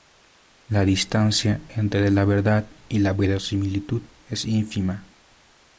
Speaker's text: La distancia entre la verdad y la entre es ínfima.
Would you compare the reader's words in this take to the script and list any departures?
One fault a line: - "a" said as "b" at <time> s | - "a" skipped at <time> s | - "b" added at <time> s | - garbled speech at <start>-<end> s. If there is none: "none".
- "entre" said as "verosimilitud" at 3.1 s